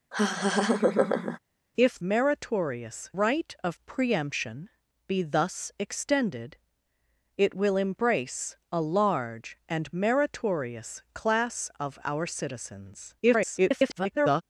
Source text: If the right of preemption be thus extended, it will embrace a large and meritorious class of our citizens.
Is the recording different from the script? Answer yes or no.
yes